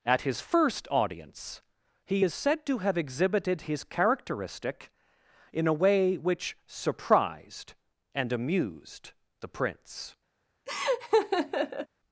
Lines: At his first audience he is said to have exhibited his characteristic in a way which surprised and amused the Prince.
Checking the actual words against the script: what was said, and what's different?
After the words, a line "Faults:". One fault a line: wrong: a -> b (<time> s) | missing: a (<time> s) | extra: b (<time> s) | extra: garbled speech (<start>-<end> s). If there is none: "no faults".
At his first audience he is said to have exhibited his characteristic in a way which surprised and amused the Prince.
Faults:
no faults